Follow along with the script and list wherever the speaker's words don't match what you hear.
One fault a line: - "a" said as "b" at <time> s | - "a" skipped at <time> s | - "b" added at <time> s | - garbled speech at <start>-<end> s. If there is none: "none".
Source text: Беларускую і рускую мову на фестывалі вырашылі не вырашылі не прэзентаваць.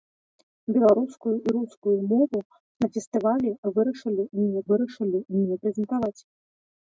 none